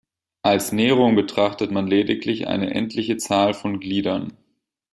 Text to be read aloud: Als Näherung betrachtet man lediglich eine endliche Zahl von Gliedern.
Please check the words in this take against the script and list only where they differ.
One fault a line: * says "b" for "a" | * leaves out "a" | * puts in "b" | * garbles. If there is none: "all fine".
all fine